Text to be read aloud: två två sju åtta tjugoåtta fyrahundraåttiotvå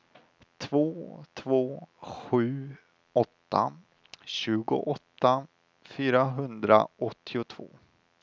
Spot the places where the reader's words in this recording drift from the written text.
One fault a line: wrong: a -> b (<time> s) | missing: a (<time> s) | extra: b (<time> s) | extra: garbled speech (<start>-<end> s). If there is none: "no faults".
no faults